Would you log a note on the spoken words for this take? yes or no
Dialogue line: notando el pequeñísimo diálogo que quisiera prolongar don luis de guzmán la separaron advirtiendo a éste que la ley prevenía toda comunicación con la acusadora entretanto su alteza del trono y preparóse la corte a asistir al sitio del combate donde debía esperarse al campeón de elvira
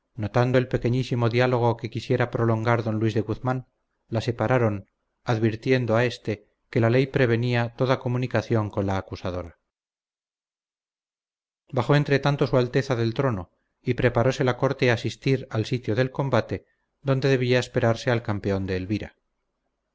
yes